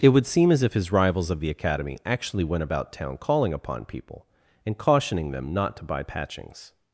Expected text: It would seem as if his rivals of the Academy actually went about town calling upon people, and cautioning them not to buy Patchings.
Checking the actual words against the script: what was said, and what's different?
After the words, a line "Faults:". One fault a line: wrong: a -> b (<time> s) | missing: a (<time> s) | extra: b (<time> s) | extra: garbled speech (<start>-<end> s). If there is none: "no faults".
It would seem as if his rivals of the Academy actually went about town calling upon people, and cautioning them not to buy Patchings.
Faults:
no faults